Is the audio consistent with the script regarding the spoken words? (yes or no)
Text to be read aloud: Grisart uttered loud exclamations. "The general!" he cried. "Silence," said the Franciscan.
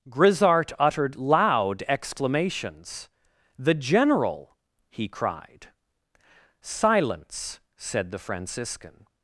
yes